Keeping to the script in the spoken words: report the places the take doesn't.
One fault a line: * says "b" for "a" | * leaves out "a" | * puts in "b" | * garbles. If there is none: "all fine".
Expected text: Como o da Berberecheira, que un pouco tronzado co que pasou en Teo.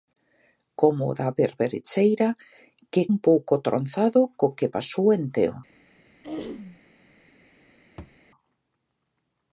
all fine